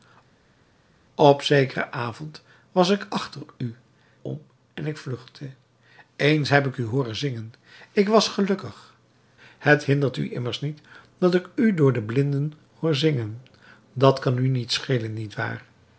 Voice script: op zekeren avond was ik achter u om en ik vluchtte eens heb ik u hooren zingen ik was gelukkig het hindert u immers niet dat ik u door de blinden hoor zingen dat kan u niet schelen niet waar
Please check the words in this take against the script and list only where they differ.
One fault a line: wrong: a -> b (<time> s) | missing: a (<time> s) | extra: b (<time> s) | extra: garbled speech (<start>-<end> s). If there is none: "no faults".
no faults